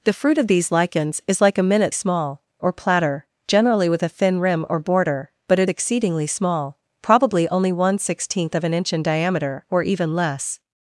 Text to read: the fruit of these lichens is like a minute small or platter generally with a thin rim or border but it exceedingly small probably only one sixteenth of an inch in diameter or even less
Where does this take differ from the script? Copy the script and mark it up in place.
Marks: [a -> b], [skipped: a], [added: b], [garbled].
the fruit of these lichens is like a minute small or platter generally with a thin rim or border but it exceedingly small probably only one sixteenth of an inch in diameter or even less